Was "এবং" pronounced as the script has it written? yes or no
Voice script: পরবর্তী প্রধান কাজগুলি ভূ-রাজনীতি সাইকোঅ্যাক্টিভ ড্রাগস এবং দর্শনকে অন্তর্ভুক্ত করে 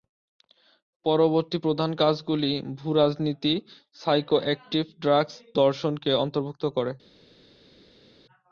no